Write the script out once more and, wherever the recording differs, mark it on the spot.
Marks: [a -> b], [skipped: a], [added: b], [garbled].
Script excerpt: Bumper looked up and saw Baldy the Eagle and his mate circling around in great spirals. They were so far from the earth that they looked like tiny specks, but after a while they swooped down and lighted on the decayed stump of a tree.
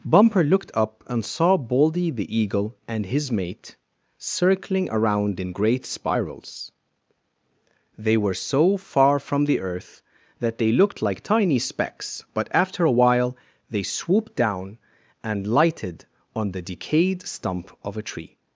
Bumper looked up and saw Baldy the Eagle and his mate circling around in great spirals. They were so far from the earth that they looked like tiny specks, but after a while they swooped down and lighted on the decayed stump of a tree.